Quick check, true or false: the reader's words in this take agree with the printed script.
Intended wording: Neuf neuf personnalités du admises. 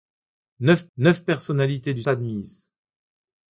true